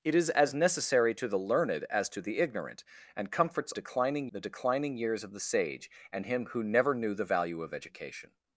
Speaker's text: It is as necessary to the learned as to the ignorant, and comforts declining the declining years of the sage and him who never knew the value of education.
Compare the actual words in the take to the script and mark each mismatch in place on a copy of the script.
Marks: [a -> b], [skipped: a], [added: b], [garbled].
It is as necessary to the learned as to the ignorant, and comforts declining the declining years of the sage and him who never knew the value of education.